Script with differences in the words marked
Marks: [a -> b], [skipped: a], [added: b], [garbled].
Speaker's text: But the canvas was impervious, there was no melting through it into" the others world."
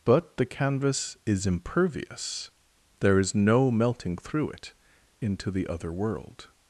But the canvas [was -> is] impervious, there [was -> is] no melting through it into" the [others -> other] world."